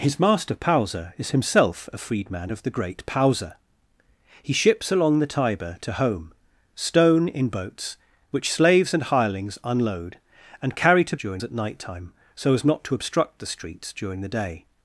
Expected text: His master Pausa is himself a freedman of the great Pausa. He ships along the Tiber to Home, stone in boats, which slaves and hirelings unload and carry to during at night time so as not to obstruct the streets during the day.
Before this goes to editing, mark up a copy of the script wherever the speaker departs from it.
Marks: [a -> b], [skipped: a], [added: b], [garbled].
His master Pausa is himself a freedman of the great Pausa. He ships along the Tiber to Home, stone in boats, which slaves and hirelings unload and carry to during at night time so as not to obstruct the streets during the day.